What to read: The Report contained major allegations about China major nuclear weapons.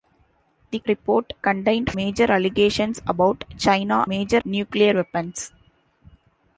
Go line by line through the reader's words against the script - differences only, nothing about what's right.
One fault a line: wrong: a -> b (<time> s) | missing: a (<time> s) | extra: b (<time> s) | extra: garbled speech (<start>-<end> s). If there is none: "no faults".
no faults